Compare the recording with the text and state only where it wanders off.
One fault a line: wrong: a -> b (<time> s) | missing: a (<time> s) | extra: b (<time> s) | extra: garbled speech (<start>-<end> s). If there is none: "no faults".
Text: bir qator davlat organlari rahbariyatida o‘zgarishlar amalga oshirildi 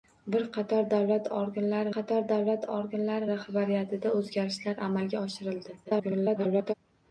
extra: qator davlat organlari (1.9 s)
extra: garbled speech (5.8-6.7 s)